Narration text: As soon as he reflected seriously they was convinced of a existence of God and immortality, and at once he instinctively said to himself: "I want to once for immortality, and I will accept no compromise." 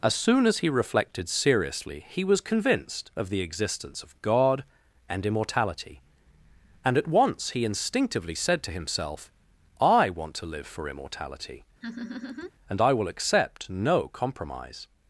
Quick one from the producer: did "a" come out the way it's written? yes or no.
no